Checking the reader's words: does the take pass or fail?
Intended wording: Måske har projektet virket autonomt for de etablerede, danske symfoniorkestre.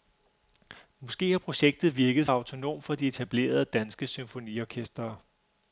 pass